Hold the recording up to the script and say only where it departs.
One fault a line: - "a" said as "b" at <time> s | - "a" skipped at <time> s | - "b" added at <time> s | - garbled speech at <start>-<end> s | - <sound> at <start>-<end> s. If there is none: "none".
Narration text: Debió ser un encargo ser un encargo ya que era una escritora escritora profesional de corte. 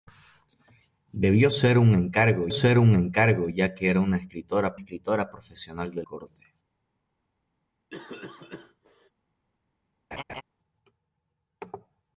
- cough at 7.9-9.1 s
- laugh at 10.1-10.4 s